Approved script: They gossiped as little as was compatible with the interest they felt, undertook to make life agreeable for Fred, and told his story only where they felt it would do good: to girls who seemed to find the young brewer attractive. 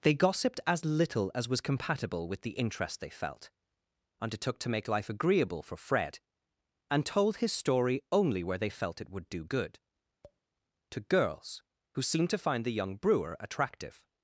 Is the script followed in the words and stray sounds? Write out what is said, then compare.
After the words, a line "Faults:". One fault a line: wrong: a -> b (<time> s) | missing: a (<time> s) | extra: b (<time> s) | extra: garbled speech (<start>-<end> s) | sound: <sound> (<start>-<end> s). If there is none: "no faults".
They gossiped as little as was compatible with the interest they felt, undertook to make life agreeable for Fred, and told his story only where they felt it would do good: to girls who seemed to find the young brewer attractive.
Faults:
sound: tap (10.2-10.4 s)